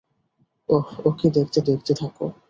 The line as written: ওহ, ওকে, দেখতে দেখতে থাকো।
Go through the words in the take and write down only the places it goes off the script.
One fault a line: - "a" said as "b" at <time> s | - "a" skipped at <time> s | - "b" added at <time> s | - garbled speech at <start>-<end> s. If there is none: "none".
none